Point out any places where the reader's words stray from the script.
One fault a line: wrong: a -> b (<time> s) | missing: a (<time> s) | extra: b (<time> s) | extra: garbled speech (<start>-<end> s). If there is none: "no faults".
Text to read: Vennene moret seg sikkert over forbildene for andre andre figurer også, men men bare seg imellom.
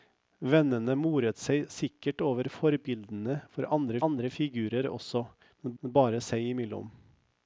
no faults